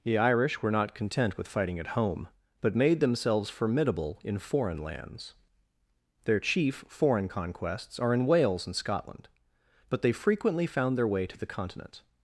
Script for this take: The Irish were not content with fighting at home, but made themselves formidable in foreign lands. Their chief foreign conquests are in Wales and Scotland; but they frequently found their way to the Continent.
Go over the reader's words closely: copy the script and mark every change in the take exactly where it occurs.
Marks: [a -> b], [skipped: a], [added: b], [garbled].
The Irish were not content with fighting at home, but made themselves formidable in foreign lands. Their chief foreign conquests are in Wales and Scotland; but they frequently found their way to the Continent.